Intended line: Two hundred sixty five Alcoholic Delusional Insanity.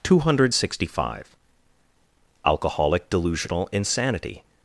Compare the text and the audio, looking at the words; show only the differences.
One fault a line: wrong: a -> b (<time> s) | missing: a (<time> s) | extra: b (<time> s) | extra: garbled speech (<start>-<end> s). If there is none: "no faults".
no faults